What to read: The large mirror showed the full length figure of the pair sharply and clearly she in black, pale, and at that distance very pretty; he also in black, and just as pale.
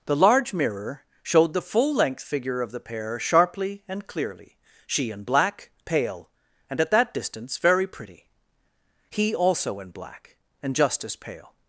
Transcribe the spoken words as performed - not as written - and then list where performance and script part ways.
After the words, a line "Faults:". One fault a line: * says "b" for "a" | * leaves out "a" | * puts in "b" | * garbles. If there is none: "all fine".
The large mirror showed the full length figure of the pair sharply and clearly she in black, pale, and at that distance very pretty; he also in black, and just as pale.
Faults:
all fine